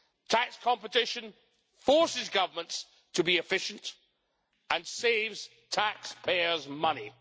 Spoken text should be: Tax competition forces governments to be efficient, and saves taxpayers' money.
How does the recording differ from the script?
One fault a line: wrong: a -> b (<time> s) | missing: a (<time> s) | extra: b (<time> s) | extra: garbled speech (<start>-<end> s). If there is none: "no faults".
no faults